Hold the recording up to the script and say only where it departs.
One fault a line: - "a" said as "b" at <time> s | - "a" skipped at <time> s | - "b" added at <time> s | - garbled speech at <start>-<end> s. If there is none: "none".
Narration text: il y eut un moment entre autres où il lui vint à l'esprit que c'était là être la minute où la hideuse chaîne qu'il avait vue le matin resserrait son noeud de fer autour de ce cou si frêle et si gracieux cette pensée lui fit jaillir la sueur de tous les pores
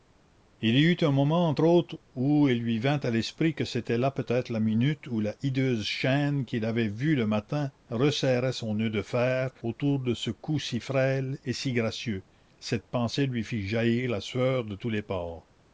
- "peut" added at 4.1 s